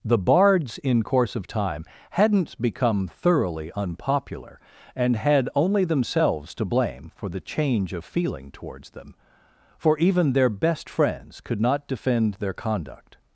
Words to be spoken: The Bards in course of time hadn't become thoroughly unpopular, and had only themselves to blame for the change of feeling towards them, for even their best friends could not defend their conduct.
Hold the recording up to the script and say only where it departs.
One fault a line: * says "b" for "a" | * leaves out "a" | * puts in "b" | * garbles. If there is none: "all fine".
all fine